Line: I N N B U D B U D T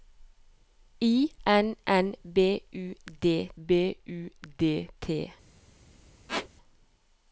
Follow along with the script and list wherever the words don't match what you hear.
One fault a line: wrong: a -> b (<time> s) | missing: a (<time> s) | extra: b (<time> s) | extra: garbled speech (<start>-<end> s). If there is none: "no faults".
no faults